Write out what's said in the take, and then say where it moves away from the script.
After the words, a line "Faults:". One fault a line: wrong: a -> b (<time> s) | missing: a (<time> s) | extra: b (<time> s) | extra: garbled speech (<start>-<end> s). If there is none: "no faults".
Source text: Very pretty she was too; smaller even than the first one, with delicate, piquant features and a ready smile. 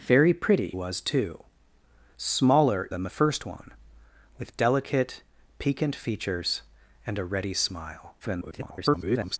Very pretty was too; smaller than the first one, with delicate, piquant features and a ready smile. [garbled]
Faults:
missing: she (0.8 s)
missing: even (2.9 s)
extra: garbled speech (8.2-9.4 s)